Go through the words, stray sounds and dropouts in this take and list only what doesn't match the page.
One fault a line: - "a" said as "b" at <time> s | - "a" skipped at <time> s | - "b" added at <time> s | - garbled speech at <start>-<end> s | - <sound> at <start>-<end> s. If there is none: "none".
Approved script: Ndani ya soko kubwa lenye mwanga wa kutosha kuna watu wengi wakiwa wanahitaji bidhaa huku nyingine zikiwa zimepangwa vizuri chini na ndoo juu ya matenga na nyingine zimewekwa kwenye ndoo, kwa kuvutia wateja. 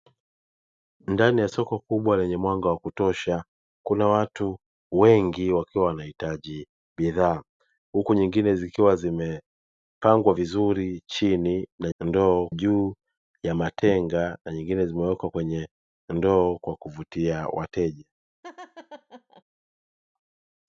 - laugh at 18.4-19.4 s